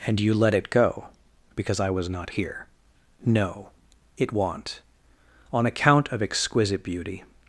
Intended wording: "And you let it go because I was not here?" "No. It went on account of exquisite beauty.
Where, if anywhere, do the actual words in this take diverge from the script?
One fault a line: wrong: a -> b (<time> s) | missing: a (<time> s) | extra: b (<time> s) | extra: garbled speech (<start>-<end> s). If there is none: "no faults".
wrong: went -> want (4.3 s)